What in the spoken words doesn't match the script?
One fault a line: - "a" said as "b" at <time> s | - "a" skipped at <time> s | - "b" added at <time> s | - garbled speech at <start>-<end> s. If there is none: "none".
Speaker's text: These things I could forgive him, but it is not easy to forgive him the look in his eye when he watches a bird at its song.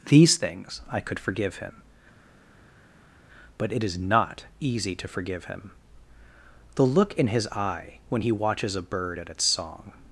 none